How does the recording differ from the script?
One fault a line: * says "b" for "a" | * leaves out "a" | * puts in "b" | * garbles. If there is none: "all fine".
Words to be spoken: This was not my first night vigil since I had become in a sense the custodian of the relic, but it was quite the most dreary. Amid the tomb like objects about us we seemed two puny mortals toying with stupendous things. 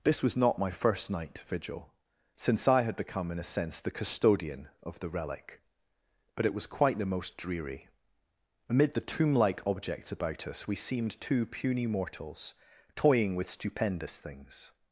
all fine